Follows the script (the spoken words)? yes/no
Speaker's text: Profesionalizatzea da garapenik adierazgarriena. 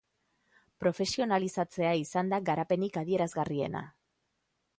no